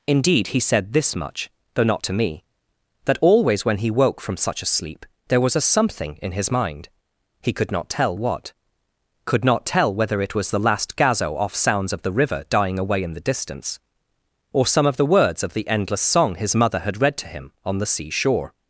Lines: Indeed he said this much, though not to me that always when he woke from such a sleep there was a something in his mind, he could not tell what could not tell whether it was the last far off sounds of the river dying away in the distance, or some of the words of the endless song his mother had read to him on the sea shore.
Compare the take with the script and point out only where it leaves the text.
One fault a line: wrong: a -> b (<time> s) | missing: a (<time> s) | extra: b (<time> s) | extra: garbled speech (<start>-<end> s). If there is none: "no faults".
wrong: far -> gazo (11.0 s)